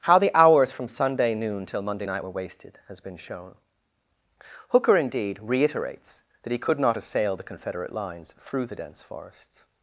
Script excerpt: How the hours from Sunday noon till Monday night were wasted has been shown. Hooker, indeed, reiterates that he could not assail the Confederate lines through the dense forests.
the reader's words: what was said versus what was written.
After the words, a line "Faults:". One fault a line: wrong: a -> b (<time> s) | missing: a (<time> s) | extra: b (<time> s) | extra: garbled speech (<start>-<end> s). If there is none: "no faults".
How the hours from Sunday noon till Monday night were wasted has been shown. Hooker, indeed, reiterates that he could not assail the Confederate lines through the dense forests.
Faults:
no faults